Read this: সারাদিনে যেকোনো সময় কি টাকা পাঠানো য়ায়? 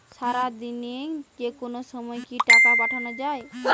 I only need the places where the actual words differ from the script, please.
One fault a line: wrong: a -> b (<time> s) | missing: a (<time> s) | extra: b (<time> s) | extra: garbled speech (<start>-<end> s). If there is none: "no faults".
no faults